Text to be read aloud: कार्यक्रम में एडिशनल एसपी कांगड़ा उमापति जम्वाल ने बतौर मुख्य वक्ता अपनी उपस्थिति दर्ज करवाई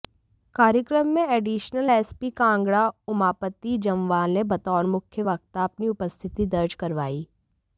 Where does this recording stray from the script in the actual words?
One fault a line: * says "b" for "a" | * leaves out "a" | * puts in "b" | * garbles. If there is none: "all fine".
all fine